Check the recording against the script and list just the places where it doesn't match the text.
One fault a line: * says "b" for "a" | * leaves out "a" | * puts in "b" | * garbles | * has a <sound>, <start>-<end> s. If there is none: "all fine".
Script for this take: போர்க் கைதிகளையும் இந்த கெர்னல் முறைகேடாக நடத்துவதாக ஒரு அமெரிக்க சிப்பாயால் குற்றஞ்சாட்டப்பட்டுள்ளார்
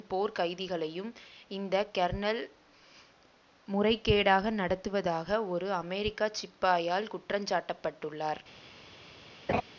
* has a laugh, 9.5-9.6 s